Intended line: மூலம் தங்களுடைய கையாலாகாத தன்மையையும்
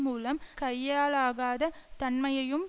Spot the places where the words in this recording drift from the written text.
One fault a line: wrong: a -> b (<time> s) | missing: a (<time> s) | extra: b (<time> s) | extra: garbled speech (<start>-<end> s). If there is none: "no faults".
missing: தங்களுடைய (0.4 s)